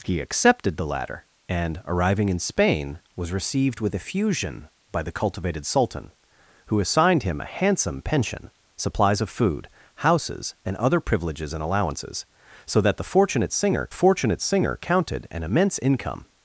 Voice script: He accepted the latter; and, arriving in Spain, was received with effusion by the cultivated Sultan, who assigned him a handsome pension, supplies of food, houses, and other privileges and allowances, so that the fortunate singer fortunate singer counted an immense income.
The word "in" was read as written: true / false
true